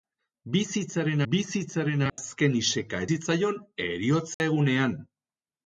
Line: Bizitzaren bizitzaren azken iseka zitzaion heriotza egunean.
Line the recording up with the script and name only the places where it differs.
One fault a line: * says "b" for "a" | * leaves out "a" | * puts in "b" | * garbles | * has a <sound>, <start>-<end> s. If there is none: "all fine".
* has a dropout, 2.1-2.2 s
* has a dropout, 4.3-4.4 s